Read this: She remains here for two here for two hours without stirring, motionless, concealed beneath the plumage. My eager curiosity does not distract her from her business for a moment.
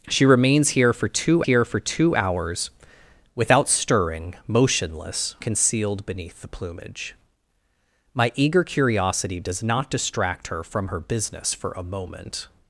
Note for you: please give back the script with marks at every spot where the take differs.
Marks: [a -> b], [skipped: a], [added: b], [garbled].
She remains here for two here for two hours without stirring, motionless, concealed beneath the plumage. My eager curiosity does not distract her from her business for a moment.